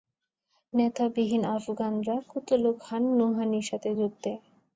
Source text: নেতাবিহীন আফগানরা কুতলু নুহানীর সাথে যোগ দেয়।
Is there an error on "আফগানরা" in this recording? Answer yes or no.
no